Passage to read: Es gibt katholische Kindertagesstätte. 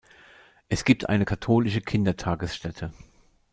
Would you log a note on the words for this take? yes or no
yes